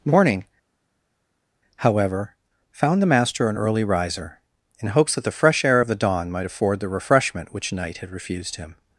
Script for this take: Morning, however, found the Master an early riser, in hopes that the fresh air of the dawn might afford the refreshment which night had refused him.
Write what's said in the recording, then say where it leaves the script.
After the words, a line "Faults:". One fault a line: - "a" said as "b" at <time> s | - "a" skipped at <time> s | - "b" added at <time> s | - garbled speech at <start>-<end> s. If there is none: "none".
Morning, however, found the Master an early riser, in hopes that the fresh air of the dawn might afford the refreshment which night had refused him.
Faults:
none